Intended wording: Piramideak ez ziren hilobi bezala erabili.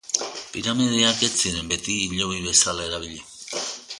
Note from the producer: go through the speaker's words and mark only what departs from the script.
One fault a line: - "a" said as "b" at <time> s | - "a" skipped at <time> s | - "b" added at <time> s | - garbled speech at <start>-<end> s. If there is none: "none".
- "beti" added at 1.7 s